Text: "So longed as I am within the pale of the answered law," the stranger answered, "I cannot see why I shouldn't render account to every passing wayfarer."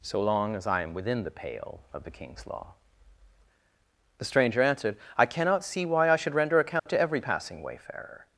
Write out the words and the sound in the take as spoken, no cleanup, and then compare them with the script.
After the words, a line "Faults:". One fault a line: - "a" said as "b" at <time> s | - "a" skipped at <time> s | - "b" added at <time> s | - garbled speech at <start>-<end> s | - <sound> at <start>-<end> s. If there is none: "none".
"So long as I am within the pale of the king's law," the stranger answered, "I cannot see why I should render account to every passing wayfarer."
Faults:
- "longed" said as "long" at 0.2 s
- "answered" said as "king's" at 2.1 s
- "shouldn't" said as "should" at 6.2 s
- dropout at 6.8-6.9 s